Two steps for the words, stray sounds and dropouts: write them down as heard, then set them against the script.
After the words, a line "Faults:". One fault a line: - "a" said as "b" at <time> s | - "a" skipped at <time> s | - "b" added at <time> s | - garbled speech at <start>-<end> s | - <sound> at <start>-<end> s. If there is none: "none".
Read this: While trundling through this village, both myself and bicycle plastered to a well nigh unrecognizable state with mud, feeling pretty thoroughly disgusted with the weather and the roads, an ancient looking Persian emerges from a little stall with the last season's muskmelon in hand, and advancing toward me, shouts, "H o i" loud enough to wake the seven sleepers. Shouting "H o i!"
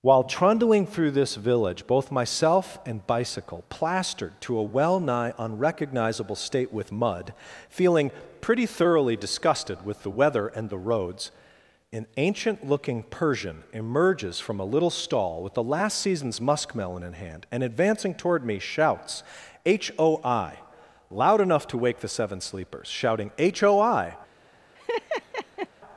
While trundling through this village, both myself and bicycle plastered to a well nigh unrecognizable state with mud, feeling pretty thoroughly disgusted with the weather and the roads, an ancient looking Persian emerges from a little stall with the last season's muskmelon in hand, and advancing toward me, shouts, "H o i" loud enough to wake the seven sleepers. Shouting "H o i!"
Faults:
- laugh at 24.7-25.7 s